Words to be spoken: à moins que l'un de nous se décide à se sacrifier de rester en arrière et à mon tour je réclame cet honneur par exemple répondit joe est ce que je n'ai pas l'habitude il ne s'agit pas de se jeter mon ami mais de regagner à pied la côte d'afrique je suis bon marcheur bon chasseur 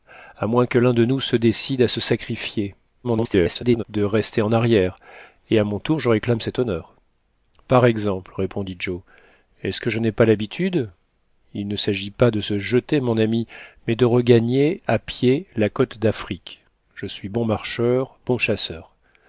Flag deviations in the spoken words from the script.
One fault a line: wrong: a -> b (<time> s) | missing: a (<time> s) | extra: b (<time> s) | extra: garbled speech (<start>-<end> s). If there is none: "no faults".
extra: garbled speech (3.0-3.8 s)